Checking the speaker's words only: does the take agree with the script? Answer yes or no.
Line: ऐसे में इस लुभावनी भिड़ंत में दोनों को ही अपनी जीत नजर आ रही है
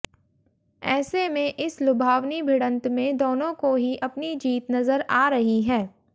yes